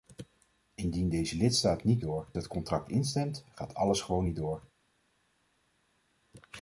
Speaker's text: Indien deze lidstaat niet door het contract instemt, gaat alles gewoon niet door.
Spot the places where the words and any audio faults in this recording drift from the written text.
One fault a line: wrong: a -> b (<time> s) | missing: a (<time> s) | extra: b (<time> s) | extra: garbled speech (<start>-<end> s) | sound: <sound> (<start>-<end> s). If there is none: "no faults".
no faults